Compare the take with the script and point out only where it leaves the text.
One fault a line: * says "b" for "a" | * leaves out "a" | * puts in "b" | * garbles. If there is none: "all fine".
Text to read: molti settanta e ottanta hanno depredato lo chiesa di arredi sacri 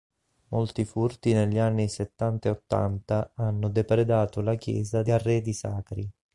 * puts in "furti negli anni"
* says "la" for "lo"